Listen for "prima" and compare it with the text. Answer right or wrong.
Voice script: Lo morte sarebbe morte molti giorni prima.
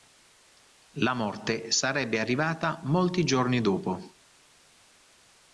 wrong